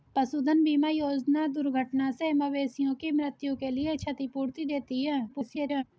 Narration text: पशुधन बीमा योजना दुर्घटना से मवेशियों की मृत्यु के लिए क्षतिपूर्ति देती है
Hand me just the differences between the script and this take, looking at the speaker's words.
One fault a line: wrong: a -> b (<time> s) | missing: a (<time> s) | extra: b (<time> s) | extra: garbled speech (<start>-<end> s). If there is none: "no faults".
extra: garbled speech (5.3-5.8 s)